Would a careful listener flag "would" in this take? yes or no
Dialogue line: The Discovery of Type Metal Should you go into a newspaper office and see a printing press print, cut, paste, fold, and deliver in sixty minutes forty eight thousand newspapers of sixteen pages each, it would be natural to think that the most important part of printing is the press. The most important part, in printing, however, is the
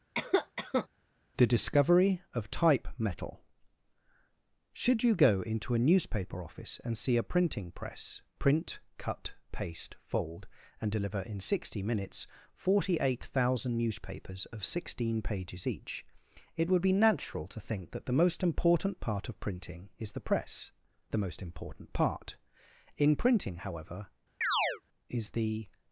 no